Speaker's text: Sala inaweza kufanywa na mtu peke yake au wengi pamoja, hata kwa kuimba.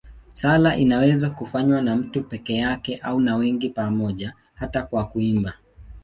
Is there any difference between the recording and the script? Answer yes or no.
yes